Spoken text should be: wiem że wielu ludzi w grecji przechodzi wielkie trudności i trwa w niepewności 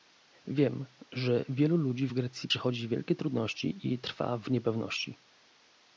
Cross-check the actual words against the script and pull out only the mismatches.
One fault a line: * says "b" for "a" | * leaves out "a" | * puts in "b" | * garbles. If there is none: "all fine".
all fine